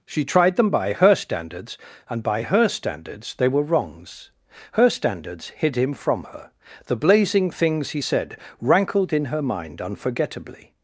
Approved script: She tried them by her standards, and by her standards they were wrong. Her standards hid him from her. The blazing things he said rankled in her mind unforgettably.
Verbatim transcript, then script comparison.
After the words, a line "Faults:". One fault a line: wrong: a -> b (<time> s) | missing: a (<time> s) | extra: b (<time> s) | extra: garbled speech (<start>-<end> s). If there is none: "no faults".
She tried them by her standards, and by her standards they were wrongs. Her standards hid him from her. The blazing things he said rankled in her mind unforgettably.
Faults:
wrong: wrong -> wrongs (3.6 s)